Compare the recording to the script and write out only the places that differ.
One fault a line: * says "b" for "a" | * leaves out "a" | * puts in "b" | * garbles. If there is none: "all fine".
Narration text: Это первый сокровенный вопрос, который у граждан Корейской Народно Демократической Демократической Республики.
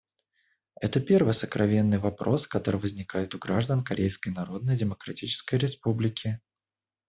* puts in "возникает"
* leaves out "Демократической"